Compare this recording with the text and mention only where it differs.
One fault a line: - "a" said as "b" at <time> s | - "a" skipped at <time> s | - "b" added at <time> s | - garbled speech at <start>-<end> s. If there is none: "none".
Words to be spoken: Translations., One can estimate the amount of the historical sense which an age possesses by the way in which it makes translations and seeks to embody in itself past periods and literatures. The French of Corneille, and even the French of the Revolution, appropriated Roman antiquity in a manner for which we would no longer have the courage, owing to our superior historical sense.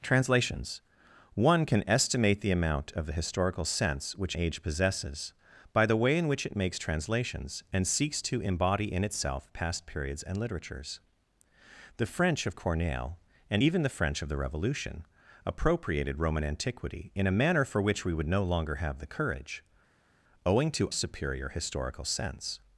- "an" skipped at 4.3 s
- "our" skipped at 20.9 s